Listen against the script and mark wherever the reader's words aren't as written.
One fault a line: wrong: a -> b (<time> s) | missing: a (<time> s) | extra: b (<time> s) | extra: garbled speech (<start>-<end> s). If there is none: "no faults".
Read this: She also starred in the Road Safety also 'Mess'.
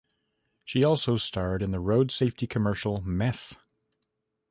wrong: also -> commercial (2.5 s)